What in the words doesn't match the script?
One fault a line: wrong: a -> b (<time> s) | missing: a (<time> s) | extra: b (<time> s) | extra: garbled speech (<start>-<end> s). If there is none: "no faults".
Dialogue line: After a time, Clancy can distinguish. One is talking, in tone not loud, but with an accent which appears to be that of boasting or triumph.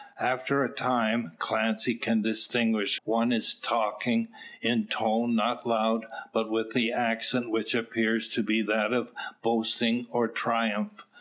no faults